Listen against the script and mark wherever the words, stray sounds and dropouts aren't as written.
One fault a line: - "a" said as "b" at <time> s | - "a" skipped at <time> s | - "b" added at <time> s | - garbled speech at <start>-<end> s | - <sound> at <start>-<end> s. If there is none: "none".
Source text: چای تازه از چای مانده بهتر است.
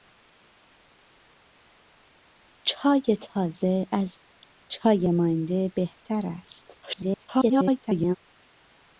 - garbled speech at 6.8-8.2 s